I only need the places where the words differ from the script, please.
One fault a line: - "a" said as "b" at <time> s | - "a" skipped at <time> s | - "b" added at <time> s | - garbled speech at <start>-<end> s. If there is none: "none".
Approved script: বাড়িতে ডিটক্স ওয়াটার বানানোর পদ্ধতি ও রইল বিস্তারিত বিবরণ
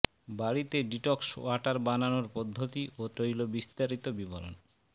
none